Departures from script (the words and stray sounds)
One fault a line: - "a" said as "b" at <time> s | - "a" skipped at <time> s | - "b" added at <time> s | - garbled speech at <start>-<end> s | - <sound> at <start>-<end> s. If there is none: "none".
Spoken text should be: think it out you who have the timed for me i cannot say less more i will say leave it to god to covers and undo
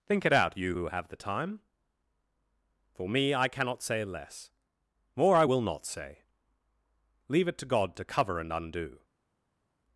- "timed" said as "time" at 1.2 s
- "not" added at 5.6 s
- "covers" said as "cover" at 8.1 s